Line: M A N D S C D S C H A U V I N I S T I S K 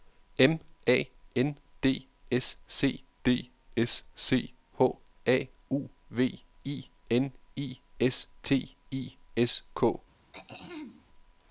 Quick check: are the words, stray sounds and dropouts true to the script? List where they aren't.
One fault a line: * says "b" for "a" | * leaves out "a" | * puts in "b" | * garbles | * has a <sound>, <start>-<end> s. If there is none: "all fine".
* has a throat clearing, 10.3-11.0 s